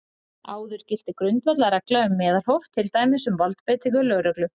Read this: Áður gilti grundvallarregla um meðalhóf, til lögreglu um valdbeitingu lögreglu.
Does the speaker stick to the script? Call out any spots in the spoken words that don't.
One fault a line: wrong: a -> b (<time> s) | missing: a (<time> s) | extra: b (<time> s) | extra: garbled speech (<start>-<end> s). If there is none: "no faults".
wrong: lögreglu -> dæmis (3.0 s)